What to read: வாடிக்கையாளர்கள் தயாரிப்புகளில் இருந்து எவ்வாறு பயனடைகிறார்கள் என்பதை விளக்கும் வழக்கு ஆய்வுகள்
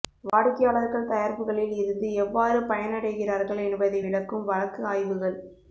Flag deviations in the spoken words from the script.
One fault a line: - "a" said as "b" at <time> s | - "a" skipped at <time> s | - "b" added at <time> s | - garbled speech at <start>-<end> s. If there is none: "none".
none